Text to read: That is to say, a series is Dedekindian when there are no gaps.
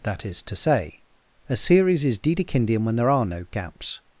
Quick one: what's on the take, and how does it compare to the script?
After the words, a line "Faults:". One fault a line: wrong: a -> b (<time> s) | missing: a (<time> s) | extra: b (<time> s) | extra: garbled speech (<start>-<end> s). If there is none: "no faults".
That is to say, a series is Dedekindian when there are no gaps.
Faults:
no faults